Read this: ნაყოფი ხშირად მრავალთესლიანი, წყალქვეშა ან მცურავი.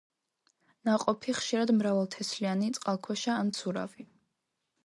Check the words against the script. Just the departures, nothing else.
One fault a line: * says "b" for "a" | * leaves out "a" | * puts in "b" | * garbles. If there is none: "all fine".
all fine